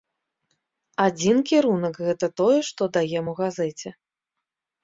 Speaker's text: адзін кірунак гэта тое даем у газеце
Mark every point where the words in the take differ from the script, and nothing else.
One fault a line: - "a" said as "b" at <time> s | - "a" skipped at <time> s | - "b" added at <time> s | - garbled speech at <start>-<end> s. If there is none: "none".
- "што" added at 2.7 s